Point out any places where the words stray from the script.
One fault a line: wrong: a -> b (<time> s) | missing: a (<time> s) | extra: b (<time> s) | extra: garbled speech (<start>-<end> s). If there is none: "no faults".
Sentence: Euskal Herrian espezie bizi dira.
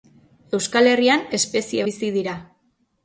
no faults